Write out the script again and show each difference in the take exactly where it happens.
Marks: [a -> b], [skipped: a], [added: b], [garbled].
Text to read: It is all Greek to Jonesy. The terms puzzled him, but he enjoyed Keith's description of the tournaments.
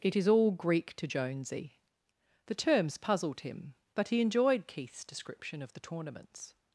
It is all Greek to Jonesy. The terms puzzled him, but he enjoyed Keith's description of the tournaments.